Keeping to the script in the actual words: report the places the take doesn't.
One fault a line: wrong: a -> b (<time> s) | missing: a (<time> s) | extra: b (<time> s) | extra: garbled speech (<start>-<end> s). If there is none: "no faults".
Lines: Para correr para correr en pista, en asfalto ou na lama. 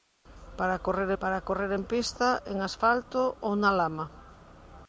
no faults